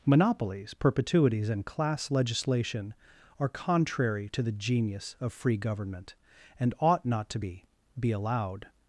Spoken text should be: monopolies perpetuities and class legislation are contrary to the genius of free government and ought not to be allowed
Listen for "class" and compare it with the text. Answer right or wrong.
right